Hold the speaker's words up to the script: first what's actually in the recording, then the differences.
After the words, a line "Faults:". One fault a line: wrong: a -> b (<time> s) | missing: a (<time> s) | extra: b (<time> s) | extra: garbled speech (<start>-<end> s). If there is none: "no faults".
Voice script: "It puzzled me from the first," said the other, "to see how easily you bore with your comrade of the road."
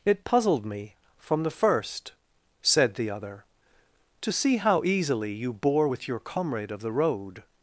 "It puzzled me from the first," said the other, "to see how easily you bore with your comrade of the road."
Faults:
no faults